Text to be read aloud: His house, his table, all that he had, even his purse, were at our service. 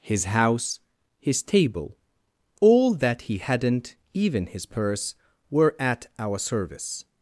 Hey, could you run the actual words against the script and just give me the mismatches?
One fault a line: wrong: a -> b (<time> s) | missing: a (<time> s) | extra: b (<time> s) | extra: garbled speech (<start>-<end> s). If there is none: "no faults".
wrong: had -> hadn't (3.4 s)